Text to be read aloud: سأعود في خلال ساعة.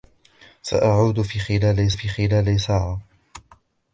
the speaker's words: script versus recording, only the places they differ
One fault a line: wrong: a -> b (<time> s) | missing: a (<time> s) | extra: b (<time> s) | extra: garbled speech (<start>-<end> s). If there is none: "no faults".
extra: في خلال (1.9 s)